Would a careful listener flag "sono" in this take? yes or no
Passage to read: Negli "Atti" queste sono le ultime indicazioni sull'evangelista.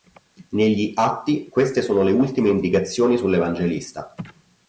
no